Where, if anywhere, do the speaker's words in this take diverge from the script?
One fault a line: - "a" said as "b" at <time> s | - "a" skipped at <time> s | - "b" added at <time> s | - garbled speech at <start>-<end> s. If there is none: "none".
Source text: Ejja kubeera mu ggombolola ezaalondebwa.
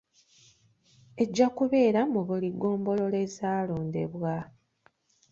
- "buli" added at 2.3 s